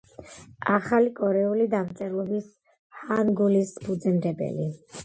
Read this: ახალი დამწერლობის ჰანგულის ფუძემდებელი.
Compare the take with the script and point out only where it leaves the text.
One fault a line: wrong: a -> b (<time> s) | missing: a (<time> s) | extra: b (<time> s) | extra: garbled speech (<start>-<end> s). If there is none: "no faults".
extra: კორეული (1.2 s)